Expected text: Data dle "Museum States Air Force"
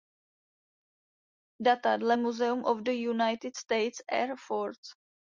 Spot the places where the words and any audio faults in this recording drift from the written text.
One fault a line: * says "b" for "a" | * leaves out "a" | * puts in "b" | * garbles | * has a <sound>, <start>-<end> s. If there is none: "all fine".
* puts in "of the United"